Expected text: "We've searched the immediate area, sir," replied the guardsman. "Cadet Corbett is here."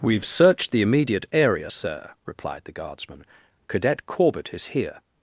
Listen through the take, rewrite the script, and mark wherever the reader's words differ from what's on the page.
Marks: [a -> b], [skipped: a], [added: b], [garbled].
"We've searched the immediate area, sir," replied the guardsman. "Cadet Corbett is here."